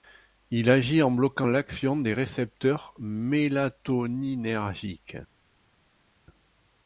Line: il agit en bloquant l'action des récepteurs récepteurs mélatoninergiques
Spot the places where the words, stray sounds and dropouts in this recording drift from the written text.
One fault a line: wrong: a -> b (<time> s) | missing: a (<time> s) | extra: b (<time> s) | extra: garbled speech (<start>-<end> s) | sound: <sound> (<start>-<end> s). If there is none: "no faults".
missing: récepteurs (2.9 s)